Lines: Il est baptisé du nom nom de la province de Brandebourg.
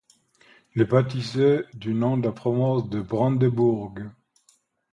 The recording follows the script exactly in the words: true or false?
false